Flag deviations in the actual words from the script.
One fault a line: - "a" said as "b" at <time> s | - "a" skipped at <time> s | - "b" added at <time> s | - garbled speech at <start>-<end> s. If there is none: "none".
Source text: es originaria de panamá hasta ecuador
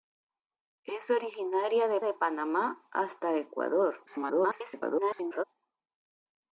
- "de" added at 2.0 s
- garbled speech at 4.1-5.4 s